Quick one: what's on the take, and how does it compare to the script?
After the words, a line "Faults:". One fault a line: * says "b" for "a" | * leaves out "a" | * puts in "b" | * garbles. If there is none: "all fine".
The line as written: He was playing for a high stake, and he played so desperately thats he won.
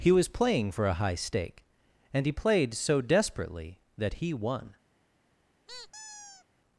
He was playing for a high stake, and he played so desperately that he won.
Faults:
* says "that" for "thats"